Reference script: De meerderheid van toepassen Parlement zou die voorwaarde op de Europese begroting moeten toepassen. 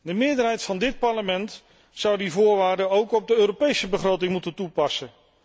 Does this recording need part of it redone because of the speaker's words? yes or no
yes